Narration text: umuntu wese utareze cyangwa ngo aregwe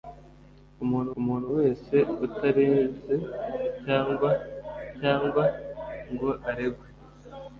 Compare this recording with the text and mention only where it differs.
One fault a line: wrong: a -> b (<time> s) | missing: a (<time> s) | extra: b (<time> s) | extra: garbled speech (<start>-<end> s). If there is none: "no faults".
extra: umuntu (1.2 s)
extra: cyangwa (5.0 s)